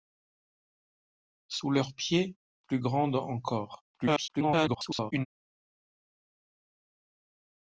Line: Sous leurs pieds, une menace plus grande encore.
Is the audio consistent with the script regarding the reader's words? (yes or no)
no